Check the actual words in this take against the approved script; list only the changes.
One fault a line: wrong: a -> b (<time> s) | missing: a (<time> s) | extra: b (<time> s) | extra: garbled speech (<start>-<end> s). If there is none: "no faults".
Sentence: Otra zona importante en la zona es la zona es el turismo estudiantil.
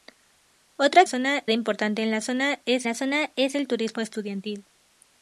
no faults